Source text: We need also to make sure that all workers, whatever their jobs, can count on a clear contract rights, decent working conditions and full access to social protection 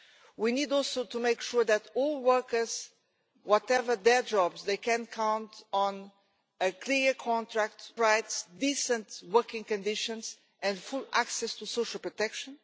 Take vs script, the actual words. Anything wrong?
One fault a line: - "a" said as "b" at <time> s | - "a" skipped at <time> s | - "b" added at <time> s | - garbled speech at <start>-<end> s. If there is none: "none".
none